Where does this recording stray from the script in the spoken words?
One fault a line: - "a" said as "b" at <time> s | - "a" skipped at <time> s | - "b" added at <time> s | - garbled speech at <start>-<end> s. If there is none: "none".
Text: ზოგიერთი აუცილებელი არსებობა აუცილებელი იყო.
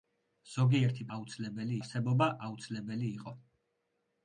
none